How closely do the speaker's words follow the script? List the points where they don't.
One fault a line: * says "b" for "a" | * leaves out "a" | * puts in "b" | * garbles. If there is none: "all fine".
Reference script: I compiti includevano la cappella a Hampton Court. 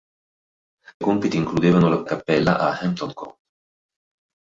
all fine